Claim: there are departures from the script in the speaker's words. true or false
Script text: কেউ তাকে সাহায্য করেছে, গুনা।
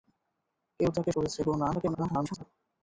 true